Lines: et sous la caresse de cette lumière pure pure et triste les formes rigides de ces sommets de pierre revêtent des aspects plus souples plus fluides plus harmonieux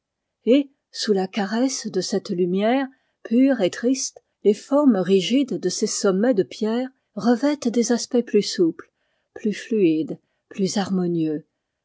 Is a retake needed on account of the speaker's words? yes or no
yes